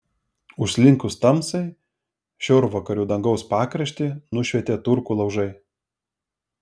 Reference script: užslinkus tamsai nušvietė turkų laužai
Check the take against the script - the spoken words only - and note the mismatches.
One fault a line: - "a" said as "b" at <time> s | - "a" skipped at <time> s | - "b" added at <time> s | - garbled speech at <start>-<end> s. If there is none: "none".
- "šiaurvakarių dangaus pakraštį" added at 2.5 s